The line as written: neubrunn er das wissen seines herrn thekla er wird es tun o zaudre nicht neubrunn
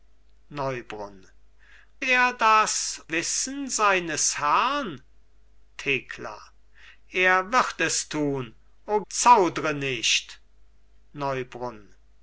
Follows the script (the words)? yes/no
yes